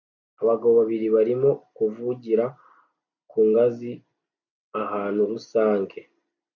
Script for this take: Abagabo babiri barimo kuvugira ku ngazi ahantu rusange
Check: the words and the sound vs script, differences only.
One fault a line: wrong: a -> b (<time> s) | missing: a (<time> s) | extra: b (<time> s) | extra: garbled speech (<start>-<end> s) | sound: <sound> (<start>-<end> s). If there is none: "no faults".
no faults